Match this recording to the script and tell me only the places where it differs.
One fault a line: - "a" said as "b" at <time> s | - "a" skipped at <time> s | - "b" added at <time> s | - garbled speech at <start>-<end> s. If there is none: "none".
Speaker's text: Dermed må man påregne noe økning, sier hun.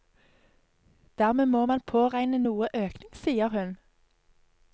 none